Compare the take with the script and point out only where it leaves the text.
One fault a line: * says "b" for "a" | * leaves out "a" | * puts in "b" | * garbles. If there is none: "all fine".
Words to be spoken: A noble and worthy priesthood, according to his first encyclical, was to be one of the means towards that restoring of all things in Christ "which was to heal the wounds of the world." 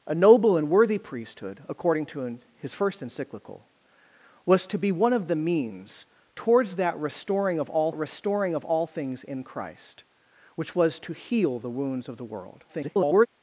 * puts in "restoring of all"
* garbles